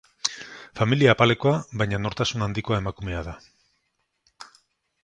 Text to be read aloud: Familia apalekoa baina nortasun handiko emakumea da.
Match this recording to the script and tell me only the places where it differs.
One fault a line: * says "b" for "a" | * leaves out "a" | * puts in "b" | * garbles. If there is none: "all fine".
all fine